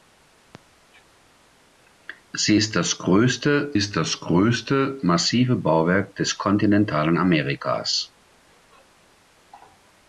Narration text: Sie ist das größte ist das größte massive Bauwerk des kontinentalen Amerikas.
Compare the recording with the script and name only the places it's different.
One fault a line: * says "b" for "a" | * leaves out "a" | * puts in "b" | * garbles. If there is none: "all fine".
all fine